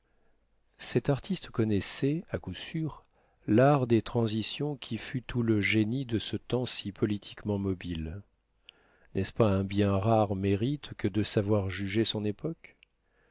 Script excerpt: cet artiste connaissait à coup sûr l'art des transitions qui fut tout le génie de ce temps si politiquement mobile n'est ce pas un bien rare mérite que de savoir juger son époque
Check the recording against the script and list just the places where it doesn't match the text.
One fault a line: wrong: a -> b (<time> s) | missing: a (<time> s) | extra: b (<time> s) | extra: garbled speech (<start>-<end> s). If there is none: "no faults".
no faults